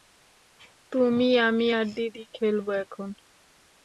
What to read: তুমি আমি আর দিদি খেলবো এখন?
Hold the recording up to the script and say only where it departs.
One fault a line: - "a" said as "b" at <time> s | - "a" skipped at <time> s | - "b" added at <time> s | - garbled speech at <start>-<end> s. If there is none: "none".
none